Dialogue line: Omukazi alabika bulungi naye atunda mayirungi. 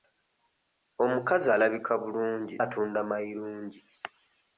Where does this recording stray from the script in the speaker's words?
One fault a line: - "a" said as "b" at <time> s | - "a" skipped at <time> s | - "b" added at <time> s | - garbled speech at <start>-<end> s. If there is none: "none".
- "naye" skipped at 2.5 s